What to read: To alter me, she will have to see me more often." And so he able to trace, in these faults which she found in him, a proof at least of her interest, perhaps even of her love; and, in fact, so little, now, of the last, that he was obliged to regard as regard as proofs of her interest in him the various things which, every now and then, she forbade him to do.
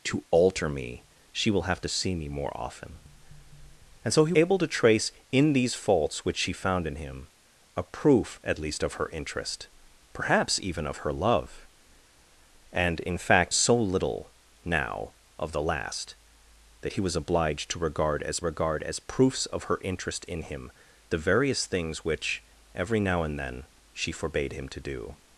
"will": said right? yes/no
yes